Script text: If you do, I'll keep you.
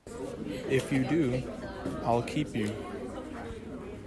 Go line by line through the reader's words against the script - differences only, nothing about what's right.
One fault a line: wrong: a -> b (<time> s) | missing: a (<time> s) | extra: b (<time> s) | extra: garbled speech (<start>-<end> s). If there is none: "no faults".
no faults